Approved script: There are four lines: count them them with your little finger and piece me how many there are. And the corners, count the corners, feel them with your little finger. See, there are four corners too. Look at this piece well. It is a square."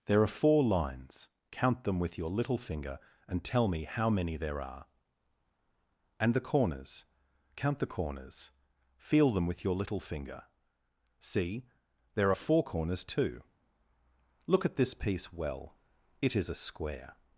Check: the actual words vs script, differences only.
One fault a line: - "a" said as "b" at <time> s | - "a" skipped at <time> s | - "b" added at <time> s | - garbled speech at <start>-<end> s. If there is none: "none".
- "them" skipped at 2.0 s
- "piece" said as "tell" at 3.4 s